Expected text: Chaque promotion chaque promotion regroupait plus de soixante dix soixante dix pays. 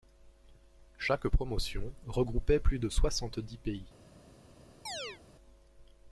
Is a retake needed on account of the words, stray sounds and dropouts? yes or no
yes